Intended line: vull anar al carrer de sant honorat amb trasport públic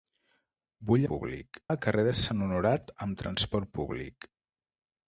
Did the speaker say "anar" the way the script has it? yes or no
no